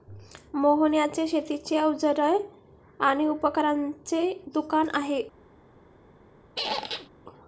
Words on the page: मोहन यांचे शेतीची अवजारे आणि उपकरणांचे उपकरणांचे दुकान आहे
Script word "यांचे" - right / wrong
right